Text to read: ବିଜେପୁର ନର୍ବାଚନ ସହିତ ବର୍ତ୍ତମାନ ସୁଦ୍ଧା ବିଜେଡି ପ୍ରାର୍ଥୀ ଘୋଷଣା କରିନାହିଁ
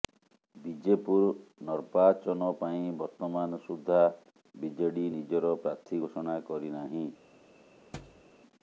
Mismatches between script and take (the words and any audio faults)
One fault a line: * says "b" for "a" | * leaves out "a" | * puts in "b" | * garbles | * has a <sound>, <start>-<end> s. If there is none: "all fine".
* says "ପାଇଁ" for "ସହିତ"
* puts in "ନିଜର"
* has a thud, 7.9-8.2 s